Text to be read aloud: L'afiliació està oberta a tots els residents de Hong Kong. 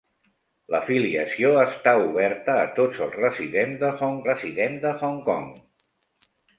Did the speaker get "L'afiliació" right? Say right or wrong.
right